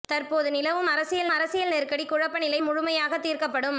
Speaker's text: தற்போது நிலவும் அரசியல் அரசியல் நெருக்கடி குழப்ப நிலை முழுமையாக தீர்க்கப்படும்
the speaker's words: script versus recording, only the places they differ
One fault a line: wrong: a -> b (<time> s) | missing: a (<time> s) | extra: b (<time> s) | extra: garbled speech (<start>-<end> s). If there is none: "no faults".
no faults